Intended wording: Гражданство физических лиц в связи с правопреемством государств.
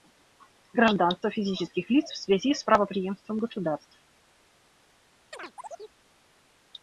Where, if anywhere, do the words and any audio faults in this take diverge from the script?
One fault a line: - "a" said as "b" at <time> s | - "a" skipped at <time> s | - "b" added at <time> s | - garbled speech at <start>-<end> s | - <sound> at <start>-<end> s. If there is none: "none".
- chirp at 5.3-6.0 s